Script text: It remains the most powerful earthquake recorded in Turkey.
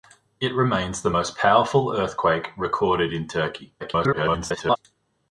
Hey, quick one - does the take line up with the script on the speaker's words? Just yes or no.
no